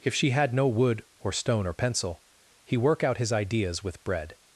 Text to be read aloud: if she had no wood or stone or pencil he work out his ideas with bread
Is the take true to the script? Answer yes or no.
yes